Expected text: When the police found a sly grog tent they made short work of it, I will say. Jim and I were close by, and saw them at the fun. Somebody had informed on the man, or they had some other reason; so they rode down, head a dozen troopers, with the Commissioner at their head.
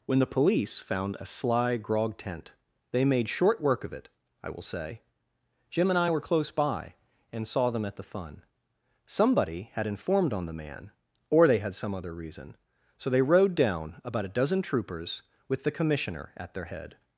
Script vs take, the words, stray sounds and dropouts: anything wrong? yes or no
yes